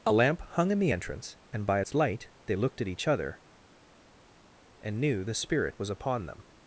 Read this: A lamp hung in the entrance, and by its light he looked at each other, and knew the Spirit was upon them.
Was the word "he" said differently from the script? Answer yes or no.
yes